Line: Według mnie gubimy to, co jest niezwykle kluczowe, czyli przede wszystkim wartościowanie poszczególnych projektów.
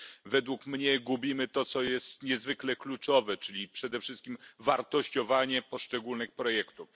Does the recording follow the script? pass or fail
pass